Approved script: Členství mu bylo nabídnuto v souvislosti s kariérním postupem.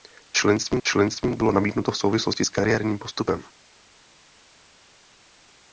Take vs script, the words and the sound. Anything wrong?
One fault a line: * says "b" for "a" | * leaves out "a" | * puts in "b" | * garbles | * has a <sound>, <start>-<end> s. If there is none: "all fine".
* puts in "členství"